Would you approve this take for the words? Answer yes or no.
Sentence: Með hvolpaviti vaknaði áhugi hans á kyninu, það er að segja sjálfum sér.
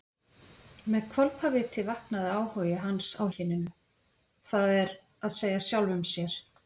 yes